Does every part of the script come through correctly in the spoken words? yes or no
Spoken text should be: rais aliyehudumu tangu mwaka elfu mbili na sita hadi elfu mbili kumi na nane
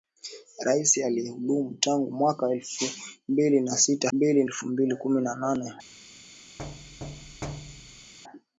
no